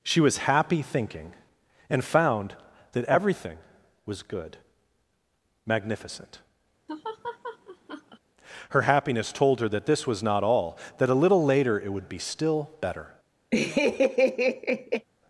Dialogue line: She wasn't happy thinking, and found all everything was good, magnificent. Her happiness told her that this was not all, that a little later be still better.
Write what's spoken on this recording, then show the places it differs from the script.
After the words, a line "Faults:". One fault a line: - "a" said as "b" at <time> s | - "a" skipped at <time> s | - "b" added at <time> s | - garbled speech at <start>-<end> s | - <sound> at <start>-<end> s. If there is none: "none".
She was happy thinking, and found that everything was good, magnificent. Her happiness told her that this was not all, that a little later it would be still better.
Faults:
- "wasn't" said as "was" at 0.2 s
- "all" said as "that" at 2.9 s
- laugh at 6.9-8.2 s
- "it would" added at 11.8 s
- laugh at 13.5-15.1 s